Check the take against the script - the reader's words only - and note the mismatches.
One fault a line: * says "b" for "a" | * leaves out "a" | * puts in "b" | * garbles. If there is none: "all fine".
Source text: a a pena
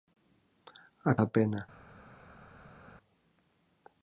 all fine